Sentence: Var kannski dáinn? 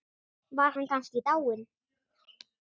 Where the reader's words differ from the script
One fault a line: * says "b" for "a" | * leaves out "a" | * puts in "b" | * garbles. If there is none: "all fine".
* puts in "hann"